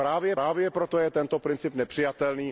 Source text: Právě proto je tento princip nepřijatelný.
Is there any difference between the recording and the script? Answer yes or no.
yes